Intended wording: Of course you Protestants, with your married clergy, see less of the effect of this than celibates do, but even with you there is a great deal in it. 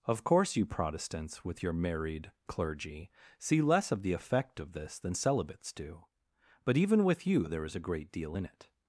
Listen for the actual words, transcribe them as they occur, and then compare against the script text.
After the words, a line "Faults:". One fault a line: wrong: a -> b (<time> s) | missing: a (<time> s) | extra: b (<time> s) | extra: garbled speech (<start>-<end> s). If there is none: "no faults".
Of course you Protestants, with your married clergy, see less of the effect of this than celibates do, but even with you there is a great deal in it.
Faults:
no faults